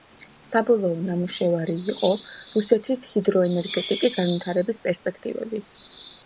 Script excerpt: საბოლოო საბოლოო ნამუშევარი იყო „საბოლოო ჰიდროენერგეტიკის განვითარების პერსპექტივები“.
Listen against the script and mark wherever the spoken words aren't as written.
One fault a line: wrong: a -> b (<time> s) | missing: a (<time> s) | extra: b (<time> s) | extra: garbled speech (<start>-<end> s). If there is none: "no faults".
missing: საბოლოო (1.0 s)
wrong: საბოლოო -> რუსეთის (2.5 s)